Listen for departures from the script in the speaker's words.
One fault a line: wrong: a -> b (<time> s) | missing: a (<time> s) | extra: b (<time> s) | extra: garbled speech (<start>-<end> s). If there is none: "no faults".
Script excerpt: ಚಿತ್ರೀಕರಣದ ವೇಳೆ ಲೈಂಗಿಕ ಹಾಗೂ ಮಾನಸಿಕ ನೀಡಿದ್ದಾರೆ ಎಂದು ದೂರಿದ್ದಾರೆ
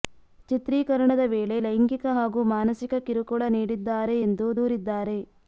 extra: ಕಿರುಕುಳ (3.1 s)